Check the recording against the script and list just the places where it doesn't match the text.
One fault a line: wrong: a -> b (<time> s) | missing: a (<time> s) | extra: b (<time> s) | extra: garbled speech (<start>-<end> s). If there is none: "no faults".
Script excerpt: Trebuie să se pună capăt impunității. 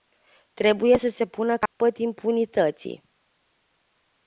no faults